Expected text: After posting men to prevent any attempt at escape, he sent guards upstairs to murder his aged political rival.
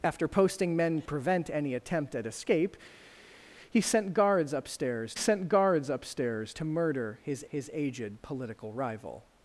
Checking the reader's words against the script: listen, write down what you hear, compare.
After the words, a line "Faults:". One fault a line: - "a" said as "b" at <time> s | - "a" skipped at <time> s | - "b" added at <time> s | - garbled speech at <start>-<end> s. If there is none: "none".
After posting men prevent any attempt at escape, he sent guards upstairs sent guards upstairs to murder his his aged political rival.
Faults:
- "to" skipped at 1.0 s
- "sent guards upstairs" added at 5.1 s
- "his" added at 7.5 s